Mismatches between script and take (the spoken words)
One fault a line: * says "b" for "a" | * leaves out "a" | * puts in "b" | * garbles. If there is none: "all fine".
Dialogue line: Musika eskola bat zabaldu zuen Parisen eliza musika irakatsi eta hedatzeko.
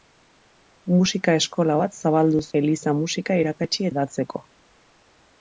* leaves out "zuen Parisen"
* leaves out "eta"